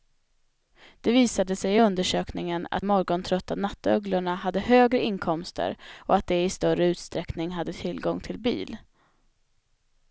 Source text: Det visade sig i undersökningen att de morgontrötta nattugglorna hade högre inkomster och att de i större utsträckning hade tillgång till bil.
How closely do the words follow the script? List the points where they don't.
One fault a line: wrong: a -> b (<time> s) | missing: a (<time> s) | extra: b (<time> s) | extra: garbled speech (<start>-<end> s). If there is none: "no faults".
missing: de (2.8 s)